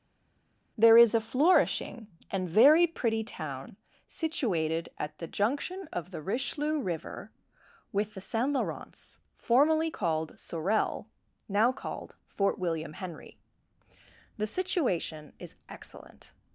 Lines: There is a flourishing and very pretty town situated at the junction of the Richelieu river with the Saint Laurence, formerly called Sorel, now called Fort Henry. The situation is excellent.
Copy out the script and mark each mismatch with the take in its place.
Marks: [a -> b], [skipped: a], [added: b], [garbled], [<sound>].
There is a flourishing and very pretty town situated at the junction of the Richelieu river with the Saint Laurence, formerly called Sorel, now called Fort [added: William] Henry. The situation is excellent.